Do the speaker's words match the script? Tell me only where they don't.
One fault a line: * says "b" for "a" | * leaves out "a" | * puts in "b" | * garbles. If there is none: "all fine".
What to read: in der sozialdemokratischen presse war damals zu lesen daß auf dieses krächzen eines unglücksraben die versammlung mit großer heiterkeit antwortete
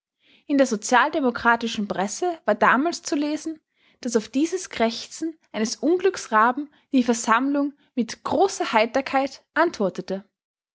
all fine